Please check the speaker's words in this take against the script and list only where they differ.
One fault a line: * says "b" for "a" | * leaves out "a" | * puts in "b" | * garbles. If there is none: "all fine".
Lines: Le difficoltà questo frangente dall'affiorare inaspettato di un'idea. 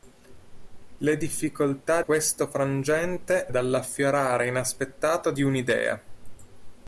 all fine